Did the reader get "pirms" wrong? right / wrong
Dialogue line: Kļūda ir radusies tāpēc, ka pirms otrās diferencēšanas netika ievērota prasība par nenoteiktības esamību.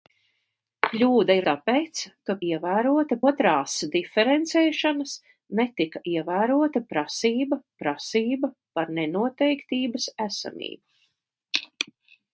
wrong